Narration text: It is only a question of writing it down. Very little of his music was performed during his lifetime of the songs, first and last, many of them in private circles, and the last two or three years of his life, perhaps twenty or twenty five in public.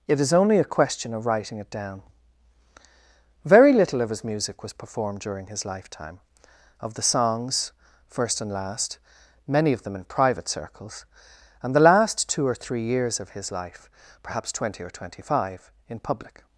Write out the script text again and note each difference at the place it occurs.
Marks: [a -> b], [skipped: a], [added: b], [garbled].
It is only a question of writing it down. Very little of his music was performed during his lifetime of the songs, first and last, many of them in private circles, and the last two or three years of his life, perhaps twenty or twenty five in public.